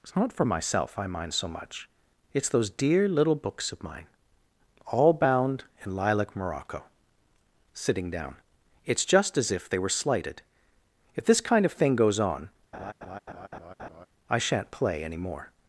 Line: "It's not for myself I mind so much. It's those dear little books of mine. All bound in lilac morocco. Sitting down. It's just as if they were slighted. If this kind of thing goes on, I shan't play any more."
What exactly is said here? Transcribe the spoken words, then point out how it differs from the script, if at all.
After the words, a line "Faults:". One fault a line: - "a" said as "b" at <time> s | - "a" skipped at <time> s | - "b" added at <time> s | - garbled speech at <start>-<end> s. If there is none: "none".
"It's not for myself I mind so much. It's those dear little books of mine. All bound in lilac morocco. Sitting down. It's just as if they were slighted. If this kind of thing goes on, I shan't play any more."
Faults:
none